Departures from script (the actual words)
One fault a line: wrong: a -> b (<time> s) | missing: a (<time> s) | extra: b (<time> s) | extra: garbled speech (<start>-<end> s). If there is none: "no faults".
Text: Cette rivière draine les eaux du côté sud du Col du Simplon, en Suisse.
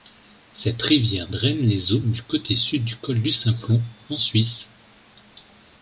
no faults